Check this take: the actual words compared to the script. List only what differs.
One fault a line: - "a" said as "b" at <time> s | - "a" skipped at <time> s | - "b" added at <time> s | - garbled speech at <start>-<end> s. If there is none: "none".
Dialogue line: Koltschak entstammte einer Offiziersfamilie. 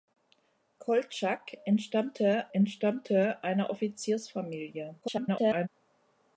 - "entstammte" added at 2.5 s
- garbled speech at 5.0-5.7 s